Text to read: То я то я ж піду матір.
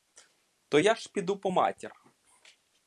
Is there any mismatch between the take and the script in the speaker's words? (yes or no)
yes